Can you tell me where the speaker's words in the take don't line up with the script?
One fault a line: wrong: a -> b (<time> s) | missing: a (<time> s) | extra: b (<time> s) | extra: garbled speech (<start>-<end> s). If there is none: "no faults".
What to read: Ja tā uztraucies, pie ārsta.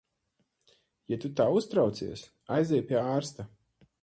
extra: tu (1.2 s)
extra: aizej (2.6 s)